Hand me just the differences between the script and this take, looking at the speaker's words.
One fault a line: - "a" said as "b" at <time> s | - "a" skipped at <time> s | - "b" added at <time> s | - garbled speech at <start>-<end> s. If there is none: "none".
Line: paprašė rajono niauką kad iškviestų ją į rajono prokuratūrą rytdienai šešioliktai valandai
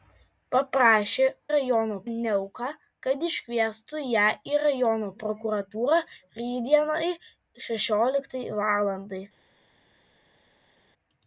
none